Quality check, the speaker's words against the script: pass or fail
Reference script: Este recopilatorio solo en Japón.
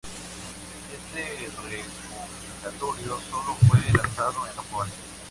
fail